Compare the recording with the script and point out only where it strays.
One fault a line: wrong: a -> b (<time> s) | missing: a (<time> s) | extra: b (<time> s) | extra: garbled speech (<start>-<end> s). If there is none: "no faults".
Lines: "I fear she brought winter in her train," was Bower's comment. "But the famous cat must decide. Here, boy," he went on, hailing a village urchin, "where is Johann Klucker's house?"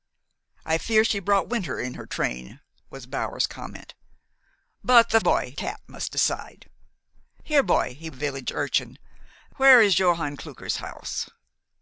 wrong: famous -> boy (5.2 s)
missing: went on hailing (8.1 s)